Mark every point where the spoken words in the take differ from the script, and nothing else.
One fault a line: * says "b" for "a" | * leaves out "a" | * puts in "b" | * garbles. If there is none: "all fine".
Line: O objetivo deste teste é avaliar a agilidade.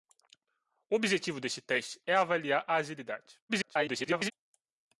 * garbles